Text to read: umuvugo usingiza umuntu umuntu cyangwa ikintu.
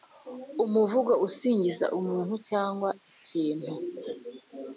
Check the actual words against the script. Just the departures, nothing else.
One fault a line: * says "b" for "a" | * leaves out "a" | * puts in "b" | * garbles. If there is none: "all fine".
* leaves out "umuntu"